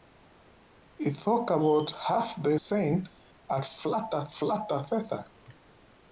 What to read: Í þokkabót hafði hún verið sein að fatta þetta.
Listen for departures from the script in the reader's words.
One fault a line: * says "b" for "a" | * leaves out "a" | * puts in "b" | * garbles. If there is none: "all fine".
* leaves out "hún verið"
* puts in "fatta"